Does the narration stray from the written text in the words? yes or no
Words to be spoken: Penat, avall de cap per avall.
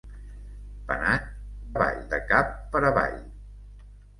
no